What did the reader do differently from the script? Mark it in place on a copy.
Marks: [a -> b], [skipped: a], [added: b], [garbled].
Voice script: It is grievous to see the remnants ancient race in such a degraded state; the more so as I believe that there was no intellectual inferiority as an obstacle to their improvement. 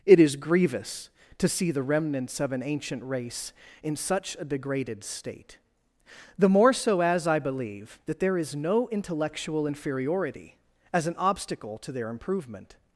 It is grievous to see the remnants [added: of an] ancient race in such a degraded state; the more so as I believe that there [was -> is] no intellectual inferiority as an obstacle to their improvement.